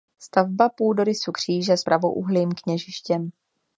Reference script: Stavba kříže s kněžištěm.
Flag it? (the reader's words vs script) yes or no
yes